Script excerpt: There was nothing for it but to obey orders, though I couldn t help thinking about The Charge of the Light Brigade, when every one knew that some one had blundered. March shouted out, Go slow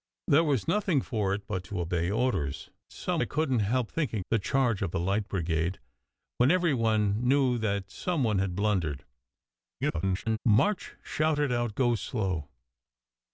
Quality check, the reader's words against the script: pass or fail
fail